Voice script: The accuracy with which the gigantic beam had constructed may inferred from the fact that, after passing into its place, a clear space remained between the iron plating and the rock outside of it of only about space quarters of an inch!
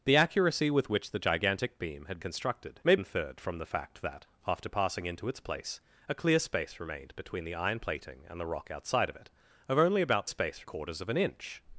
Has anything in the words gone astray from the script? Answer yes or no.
no